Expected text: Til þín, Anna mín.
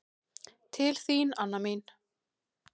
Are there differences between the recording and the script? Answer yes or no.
no